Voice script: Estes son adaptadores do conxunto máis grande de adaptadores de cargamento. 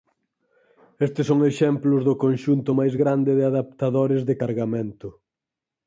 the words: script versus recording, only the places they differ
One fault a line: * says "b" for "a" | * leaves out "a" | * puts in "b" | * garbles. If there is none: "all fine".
* says "exemplos" for "adaptadores"